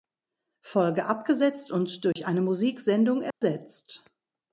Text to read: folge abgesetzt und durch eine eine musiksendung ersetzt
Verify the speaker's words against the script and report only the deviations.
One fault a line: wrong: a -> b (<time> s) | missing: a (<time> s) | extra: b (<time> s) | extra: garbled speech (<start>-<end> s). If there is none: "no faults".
missing: eine (2.4 s)